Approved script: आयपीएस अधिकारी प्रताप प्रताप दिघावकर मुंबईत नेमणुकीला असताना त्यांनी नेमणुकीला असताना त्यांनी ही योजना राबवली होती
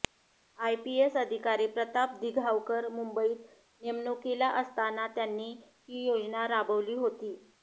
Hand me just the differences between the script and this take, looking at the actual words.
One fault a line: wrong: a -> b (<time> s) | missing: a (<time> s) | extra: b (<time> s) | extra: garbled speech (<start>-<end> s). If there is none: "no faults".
missing: प्रताप (2.1 s)
missing: नेमणुकीला असताना त्यांनी (5.5 s)